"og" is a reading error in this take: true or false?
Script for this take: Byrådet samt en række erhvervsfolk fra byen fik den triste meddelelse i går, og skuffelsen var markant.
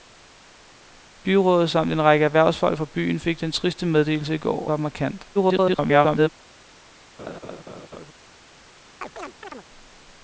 true